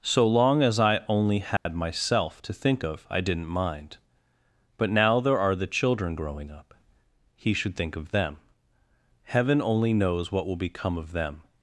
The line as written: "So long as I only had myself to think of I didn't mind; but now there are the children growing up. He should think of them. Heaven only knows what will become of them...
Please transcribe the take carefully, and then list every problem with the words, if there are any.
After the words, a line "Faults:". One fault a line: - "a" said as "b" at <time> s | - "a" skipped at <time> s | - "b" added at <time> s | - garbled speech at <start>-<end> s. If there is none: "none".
"So long as I only had myself to think of I didn't mind; but now there are the children growing up. He should think of them. Heaven only knows what will become of them...
Faults:
none